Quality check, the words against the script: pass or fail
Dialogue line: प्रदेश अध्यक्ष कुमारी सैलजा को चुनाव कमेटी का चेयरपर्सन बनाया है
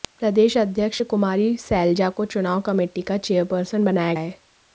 pass